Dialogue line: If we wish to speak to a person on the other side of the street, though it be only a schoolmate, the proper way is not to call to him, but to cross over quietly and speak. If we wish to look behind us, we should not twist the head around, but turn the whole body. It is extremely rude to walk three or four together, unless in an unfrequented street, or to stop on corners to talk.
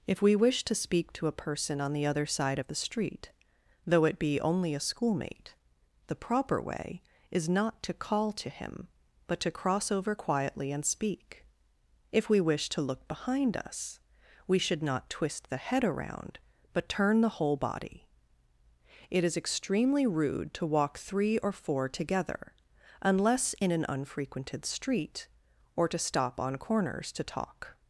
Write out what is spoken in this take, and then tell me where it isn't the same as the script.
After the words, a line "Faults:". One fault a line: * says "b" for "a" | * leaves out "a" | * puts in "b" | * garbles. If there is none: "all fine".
If we wish to speak to a person on the other side of the street, though it be only a schoolmate, the proper way is not to call to him, but to cross over quietly and speak. If we wish to look behind us, we should not twist the head around, but turn the whole body. It is extremely rude to walk three or four together, unless in an unfrequented street, or to stop on corners to talk.
Faults:
all fine